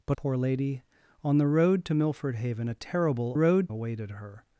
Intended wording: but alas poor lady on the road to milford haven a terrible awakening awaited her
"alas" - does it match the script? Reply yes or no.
no